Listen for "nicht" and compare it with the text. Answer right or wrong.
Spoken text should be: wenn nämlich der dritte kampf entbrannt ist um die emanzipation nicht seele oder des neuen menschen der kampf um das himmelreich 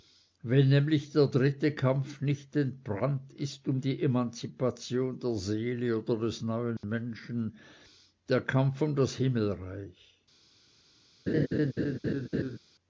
wrong